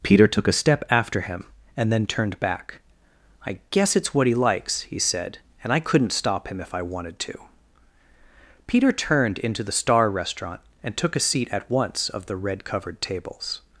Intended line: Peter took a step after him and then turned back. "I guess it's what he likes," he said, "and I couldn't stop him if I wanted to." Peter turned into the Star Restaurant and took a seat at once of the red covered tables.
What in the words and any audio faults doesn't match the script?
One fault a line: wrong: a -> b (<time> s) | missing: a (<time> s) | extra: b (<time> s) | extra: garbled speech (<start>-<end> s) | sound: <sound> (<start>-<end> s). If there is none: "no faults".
no faults